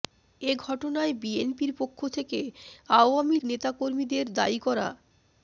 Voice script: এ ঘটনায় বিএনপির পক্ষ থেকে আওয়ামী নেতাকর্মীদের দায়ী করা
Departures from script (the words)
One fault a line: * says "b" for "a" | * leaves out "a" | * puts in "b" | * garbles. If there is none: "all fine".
all fine